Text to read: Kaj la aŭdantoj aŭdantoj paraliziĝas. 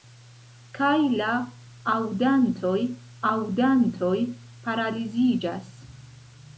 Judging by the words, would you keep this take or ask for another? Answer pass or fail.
pass